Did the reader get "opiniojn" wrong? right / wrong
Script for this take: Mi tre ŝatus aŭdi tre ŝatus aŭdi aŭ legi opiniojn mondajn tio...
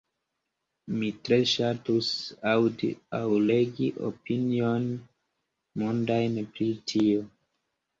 right